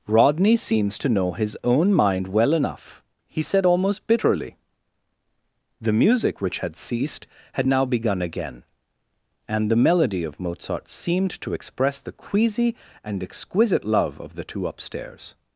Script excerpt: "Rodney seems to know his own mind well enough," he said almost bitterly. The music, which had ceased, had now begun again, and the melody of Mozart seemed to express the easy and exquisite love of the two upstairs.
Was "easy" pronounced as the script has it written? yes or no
no